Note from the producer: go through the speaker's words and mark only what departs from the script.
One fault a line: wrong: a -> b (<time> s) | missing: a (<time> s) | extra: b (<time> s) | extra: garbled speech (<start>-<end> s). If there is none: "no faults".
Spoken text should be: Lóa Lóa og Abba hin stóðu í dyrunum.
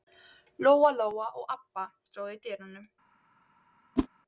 missing: hin (1.9 s)